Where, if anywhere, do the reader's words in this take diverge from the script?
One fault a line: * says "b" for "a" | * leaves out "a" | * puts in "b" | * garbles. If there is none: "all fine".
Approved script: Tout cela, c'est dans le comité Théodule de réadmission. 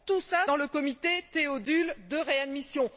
* leaves out "c'est"